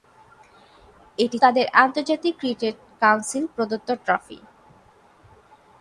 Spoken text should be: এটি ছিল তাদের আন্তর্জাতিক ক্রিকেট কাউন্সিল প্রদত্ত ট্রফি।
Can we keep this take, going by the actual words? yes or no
no